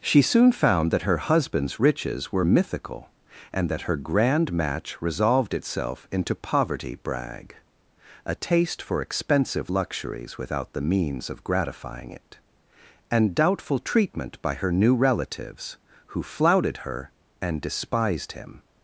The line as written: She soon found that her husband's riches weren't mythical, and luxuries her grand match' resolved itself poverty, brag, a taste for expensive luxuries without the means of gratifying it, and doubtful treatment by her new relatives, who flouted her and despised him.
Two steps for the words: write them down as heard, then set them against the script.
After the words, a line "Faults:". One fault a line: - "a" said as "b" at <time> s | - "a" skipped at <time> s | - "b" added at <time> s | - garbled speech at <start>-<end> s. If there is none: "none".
She soon found that her husband's riches were mythical, and that her grand match' resolved itself into poverty, brag, a taste for expensive luxuries without the means of gratifying it, and doubtful treatment by her new relatives, who flouted her and despised him.
Faults:
- "weren't" said as "were" at 2.3 s
- "luxuries" said as "that" at 3.7 s
- "into" added at 6.1 s